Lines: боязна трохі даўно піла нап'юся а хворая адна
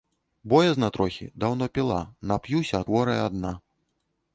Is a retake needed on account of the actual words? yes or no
no